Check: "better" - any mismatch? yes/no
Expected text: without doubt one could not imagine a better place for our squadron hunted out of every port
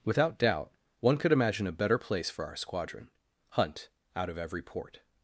no